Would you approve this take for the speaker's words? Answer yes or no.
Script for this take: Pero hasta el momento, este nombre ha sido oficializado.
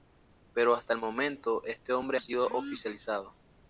yes